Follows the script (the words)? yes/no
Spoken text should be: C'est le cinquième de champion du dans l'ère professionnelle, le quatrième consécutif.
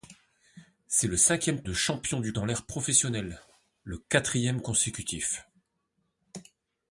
yes